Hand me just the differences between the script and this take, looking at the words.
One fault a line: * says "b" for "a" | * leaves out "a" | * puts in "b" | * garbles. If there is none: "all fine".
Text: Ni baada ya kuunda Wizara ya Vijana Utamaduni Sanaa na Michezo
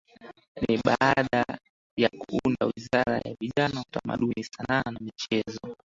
all fine